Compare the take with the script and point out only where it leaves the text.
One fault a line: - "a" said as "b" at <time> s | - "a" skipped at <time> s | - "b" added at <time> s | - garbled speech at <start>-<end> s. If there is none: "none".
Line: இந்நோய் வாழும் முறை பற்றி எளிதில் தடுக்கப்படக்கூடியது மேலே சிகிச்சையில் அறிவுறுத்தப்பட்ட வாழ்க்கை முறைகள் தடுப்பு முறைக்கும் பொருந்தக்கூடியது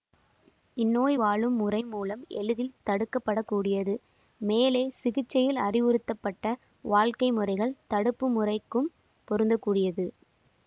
- "பற்றி" said as "மூலம்" at 1.9 s